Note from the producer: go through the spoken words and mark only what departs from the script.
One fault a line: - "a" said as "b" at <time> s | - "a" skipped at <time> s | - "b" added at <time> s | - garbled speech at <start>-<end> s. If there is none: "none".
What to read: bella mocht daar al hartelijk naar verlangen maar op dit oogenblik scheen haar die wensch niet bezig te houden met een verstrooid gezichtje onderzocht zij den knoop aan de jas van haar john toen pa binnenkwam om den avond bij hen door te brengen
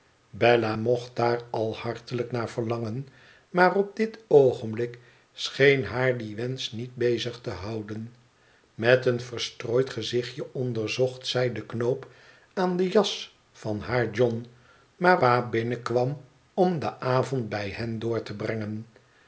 - "toen" said as "maar" at 15.0 s